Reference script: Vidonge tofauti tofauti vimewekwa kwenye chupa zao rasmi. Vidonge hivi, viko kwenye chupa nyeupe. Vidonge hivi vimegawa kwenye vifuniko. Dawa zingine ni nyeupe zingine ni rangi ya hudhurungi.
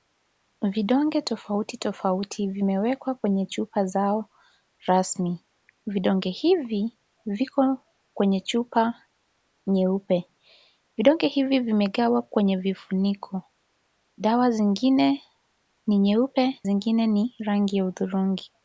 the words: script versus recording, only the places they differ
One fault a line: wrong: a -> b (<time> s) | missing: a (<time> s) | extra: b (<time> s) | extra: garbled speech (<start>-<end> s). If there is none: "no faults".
no faults